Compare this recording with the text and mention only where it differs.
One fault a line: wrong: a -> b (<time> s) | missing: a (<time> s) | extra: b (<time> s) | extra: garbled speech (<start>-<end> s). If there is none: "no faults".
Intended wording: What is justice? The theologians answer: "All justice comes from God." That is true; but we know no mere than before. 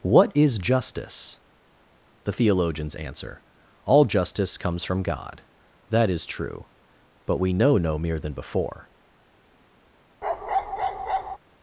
no faults